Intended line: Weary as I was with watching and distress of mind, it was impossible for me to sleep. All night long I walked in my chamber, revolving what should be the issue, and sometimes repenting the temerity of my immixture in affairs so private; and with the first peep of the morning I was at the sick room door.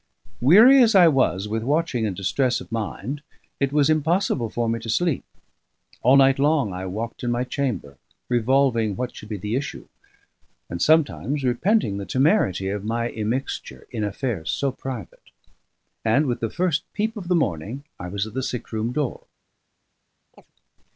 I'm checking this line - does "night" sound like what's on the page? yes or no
yes